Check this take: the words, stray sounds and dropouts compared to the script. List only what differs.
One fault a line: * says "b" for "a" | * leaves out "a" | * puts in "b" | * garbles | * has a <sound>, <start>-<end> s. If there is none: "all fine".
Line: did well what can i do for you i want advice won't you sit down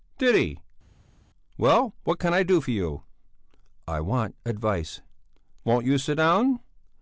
* puts in "he"